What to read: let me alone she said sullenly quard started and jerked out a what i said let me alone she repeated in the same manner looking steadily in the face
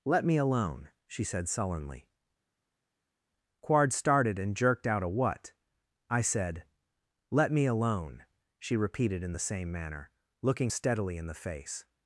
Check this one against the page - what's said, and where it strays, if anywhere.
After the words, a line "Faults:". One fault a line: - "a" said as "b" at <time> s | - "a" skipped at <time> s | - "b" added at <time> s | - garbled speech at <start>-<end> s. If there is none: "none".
let me alone she said sullenly quard started and jerked out a what i said let me alone she repeated in the same manner looking steadily in the face
Faults:
none